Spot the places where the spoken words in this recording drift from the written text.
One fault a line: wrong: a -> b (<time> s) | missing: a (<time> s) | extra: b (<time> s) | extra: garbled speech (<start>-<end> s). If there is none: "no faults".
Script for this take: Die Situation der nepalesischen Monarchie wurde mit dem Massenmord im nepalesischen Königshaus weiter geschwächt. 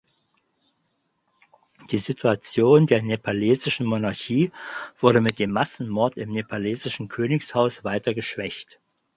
no faults